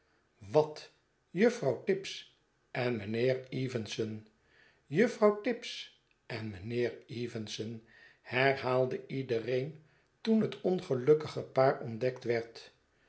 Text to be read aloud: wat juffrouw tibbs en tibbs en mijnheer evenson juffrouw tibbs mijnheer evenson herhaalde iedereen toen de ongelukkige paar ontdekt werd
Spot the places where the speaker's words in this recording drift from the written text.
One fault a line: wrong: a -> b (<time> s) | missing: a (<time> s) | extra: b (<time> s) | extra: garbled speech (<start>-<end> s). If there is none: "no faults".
missing: tibbs en (3.0 s)
extra: en (6.3 s)
wrong: de -> het (10.4 s)